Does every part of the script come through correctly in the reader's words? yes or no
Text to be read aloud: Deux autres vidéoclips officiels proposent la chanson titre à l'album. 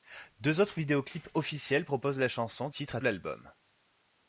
yes